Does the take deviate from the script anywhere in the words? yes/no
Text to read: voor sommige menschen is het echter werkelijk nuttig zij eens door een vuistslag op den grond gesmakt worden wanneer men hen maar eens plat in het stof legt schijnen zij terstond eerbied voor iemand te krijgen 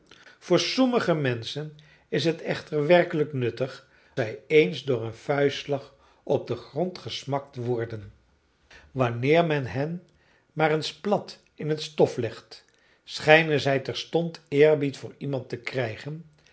no